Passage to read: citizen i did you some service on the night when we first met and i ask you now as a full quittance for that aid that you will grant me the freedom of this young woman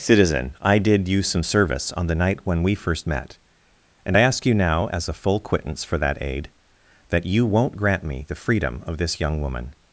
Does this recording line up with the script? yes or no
no